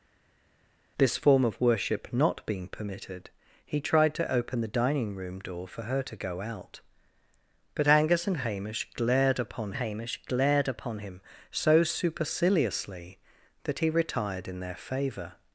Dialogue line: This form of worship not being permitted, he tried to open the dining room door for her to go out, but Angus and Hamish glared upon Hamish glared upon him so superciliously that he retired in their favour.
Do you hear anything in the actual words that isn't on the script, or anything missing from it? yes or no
no